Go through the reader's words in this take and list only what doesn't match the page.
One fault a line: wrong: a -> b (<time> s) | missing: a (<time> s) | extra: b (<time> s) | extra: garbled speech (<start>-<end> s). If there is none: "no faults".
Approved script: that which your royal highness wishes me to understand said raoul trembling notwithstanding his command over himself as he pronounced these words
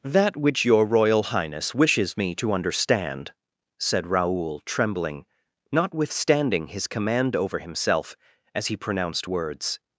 missing: these (9.3 s)